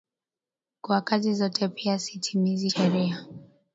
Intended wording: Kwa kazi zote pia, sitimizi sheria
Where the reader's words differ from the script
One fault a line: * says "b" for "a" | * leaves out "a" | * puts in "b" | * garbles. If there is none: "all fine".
all fine